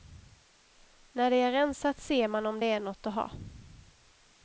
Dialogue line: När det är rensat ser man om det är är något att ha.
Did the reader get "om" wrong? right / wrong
right